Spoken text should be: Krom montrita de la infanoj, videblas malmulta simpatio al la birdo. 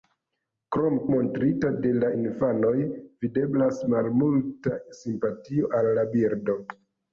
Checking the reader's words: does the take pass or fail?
pass